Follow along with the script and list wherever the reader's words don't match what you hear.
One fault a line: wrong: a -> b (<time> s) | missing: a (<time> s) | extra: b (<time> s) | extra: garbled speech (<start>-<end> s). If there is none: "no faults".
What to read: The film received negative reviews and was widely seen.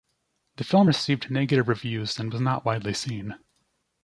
extra: not (2.4 s)